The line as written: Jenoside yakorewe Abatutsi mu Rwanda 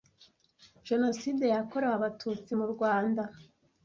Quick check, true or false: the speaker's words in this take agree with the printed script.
true